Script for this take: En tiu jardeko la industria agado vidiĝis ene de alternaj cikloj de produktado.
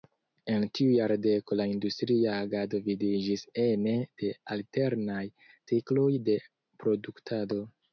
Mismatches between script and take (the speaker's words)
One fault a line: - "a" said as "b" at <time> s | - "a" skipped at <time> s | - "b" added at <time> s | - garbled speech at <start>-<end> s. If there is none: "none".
none